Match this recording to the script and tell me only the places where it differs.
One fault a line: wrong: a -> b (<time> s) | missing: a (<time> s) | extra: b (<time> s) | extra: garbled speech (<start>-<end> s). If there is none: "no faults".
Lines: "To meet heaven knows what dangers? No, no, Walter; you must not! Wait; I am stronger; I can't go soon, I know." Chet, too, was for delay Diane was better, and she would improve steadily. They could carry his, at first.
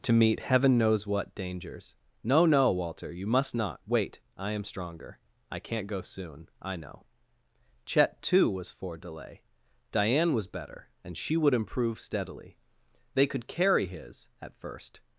no faults